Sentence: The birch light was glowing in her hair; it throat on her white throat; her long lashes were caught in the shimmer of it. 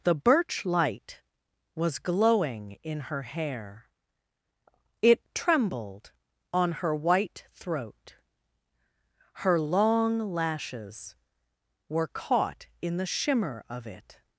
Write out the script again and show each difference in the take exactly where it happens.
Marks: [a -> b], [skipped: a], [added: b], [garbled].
The birch light was glowing in her hair; it [throat -> trembled] on her white throat; her long lashes were caught in the shimmer of it.